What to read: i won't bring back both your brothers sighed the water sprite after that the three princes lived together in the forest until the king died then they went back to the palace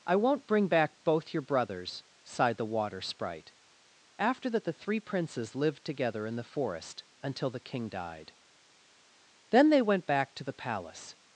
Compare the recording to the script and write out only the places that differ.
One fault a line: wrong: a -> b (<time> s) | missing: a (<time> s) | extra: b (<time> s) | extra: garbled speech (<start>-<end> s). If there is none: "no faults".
no faults